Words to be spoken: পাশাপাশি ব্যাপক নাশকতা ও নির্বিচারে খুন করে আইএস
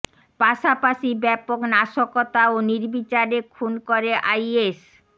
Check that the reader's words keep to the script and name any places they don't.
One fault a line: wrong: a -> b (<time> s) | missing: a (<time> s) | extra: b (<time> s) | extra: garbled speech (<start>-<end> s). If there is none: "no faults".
no faults